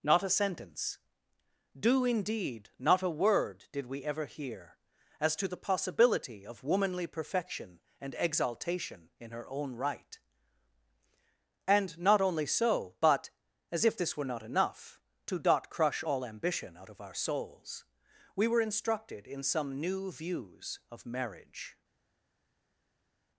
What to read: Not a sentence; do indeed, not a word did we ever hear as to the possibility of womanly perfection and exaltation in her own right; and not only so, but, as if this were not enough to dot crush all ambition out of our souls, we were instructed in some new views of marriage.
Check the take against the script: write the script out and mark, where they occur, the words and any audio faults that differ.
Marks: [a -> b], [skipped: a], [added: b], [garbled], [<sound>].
Not a sentence; do indeed, not a word did we ever hear as to the possibility of womanly perfection and exaltation in her own right; and not only so, but, as if this were not enough to dot crush all ambition out of our souls, we were instructed in some new views of marriage.